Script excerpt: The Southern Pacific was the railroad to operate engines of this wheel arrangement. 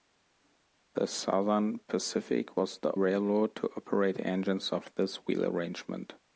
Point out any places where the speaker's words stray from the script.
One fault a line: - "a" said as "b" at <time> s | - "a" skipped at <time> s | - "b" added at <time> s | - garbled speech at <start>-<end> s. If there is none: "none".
none